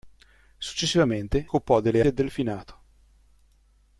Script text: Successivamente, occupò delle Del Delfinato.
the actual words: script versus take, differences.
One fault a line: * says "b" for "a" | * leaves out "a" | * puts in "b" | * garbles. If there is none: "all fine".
all fine